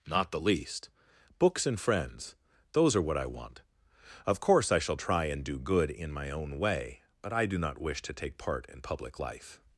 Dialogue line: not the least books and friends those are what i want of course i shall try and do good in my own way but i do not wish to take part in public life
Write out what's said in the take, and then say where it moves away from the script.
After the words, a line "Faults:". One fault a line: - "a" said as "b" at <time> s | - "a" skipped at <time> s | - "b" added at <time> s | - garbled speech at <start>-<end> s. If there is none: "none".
not the least books and friends those are what i want of course i shall try and do good in my own way but i do not wish to take part in public life
Faults:
none